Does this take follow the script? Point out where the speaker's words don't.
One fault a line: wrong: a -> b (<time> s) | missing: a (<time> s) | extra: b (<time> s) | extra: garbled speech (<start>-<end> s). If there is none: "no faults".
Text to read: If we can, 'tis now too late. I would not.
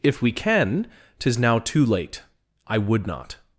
no faults